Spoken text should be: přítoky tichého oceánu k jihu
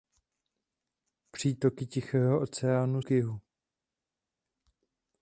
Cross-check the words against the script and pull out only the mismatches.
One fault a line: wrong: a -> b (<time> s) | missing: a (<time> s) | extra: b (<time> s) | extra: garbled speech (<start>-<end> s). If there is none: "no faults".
no faults